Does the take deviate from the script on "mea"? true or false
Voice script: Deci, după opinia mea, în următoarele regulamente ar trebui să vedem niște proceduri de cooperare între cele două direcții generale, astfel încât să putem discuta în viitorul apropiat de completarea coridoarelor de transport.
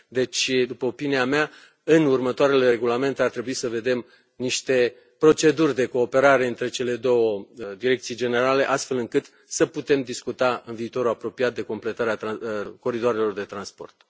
false